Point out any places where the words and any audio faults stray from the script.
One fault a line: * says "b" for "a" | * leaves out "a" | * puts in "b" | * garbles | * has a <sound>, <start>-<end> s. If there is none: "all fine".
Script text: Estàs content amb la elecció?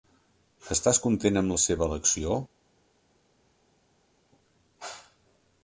* puts in "seva"